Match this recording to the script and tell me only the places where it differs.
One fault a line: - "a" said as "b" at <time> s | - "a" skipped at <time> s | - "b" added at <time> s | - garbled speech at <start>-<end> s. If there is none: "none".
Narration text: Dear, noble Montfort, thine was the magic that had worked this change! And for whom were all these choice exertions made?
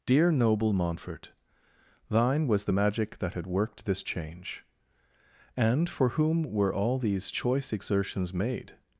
none